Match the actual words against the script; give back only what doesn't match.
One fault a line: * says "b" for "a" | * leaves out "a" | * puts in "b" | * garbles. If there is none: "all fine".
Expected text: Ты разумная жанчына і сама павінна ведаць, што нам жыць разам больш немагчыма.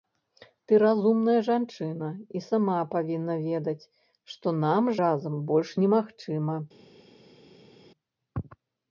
* leaves out "жыць"